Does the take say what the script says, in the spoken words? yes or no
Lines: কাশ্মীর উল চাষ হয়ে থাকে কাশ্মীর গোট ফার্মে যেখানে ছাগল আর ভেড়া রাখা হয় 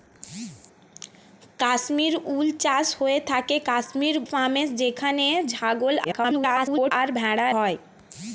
no